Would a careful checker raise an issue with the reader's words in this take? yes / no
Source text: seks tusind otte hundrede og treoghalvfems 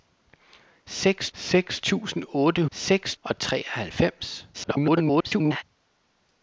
yes